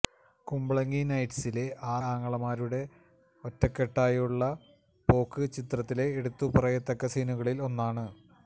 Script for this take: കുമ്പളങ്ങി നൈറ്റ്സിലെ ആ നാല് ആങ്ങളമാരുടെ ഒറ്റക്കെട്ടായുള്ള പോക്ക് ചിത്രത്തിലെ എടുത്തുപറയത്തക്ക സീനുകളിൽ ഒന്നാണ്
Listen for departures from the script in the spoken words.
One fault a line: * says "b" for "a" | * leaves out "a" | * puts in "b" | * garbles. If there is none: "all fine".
* leaves out "നാല്"